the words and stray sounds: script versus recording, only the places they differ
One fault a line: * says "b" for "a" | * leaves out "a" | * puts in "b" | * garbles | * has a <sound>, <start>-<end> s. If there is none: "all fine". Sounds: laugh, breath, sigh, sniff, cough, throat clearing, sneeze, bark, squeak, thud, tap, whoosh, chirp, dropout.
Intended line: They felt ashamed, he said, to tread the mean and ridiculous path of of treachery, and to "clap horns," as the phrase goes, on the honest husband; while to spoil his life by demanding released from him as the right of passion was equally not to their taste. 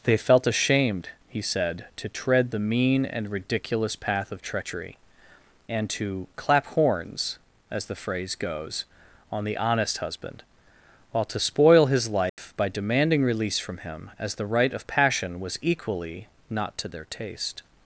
* leaves out "of"
* has a dropout, 12.3-12.4 s
* says "release" for "released"